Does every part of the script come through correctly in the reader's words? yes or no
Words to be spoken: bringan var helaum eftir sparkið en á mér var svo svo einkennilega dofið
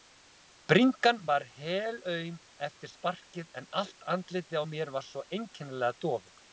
no